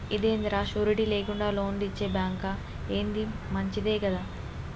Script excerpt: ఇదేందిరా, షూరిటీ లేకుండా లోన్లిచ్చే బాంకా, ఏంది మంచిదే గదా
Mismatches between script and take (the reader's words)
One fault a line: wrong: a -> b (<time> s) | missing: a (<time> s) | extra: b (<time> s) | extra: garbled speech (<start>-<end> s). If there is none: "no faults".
no faults